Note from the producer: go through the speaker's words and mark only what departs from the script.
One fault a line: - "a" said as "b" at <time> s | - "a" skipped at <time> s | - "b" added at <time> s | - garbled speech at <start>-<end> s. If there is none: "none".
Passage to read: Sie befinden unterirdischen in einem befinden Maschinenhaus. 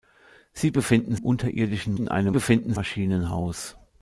none